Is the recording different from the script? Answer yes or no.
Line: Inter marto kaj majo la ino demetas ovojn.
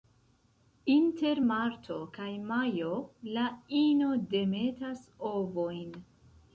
no